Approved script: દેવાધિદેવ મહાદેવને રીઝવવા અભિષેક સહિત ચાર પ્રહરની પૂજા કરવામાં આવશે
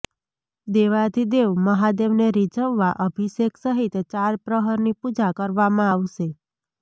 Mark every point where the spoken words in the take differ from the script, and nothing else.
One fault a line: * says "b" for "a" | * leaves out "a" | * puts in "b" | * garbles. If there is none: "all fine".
all fine